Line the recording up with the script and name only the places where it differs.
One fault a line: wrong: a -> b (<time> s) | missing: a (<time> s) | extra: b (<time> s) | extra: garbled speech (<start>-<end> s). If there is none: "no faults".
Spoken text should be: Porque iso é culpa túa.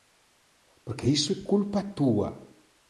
no faults